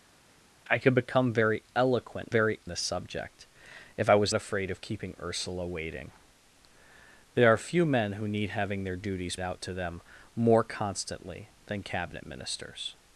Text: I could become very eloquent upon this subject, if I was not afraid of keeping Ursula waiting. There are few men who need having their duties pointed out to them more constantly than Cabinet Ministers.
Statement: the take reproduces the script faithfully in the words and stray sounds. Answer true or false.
false